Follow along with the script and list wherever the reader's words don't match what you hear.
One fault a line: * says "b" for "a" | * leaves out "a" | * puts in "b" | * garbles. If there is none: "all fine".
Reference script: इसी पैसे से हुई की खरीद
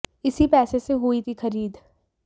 all fine